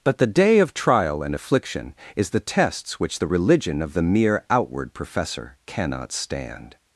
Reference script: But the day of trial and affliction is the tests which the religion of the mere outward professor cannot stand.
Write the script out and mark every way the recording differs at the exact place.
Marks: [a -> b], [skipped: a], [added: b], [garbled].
But the day of trial and affliction is the tests which the religion of the mere outward professor cannot stand.